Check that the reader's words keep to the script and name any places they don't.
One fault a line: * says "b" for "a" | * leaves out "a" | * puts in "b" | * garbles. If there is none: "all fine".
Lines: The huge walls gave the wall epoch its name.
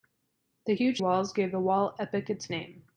all fine